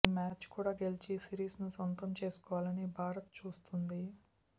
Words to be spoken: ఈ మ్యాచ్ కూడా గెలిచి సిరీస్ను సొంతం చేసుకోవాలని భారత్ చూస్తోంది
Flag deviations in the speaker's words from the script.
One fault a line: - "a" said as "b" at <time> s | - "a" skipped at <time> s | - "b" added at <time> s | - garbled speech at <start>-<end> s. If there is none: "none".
none